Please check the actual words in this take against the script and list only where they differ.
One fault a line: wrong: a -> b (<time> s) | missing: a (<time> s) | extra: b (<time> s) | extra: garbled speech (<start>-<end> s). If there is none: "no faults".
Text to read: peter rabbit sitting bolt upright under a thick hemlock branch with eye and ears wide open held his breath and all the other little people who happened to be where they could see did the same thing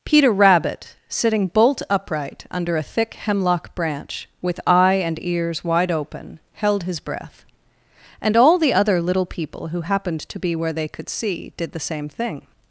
no faults